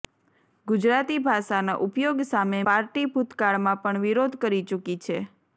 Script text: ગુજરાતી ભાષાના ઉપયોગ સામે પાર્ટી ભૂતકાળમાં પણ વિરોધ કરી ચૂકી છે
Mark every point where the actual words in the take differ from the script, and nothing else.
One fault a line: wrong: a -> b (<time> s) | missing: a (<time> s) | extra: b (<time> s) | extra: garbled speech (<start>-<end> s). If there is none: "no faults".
no faults